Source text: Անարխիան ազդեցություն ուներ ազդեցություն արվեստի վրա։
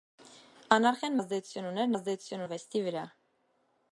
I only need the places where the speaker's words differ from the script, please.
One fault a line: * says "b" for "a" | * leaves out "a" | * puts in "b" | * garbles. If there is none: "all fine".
all fine